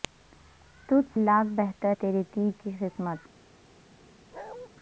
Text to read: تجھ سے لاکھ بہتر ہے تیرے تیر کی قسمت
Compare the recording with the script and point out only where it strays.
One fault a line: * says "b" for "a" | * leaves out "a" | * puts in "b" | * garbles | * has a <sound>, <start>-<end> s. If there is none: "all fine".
* leaves out "سے"
* leaves out "ہے"
* has a bark, 4.3-4.7 s